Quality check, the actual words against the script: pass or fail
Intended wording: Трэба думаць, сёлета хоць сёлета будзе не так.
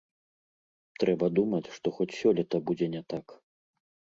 fail